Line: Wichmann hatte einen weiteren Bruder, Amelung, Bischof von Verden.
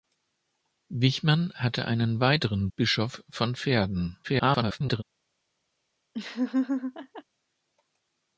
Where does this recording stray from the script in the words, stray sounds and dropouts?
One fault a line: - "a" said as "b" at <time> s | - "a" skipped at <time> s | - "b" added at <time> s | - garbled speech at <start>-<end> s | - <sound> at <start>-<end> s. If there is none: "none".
- "Bruder Amelung" skipped at 2.7 s
- garbled speech at 4.2-5.0 s
- laugh at 6.1-7.2 s